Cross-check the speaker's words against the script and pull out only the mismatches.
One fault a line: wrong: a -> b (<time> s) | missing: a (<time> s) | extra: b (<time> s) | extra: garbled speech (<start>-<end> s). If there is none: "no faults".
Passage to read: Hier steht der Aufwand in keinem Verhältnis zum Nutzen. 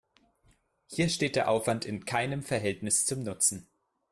no faults